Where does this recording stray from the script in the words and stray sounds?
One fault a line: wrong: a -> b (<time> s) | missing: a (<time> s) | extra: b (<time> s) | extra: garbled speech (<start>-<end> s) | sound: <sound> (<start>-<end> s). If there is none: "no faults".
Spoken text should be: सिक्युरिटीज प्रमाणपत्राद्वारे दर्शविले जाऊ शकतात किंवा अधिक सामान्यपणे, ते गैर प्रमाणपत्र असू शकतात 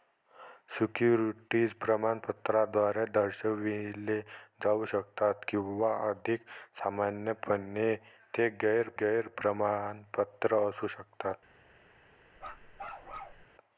extra: गैर (9.0 s)
sound: bark (12.4-13.5 s)